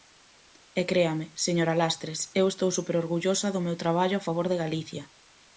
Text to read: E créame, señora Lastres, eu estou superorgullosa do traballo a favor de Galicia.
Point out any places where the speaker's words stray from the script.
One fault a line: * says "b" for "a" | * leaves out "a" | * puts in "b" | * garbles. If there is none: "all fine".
* puts in "meu"